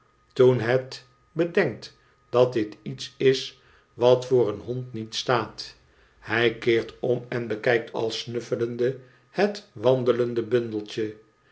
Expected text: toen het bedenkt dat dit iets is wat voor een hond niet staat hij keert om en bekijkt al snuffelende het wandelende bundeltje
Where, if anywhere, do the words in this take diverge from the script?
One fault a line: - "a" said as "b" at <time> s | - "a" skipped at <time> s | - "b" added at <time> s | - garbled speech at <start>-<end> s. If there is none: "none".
none